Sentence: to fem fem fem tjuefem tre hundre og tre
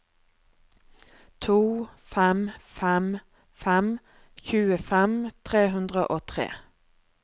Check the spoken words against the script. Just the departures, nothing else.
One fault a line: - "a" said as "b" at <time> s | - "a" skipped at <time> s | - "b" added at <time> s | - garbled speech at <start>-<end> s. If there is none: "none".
none